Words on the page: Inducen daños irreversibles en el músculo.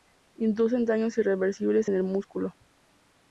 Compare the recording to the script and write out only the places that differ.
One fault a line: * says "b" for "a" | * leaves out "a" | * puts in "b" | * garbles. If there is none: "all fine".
all fine